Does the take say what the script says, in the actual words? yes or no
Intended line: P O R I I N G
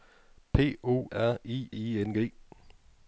yes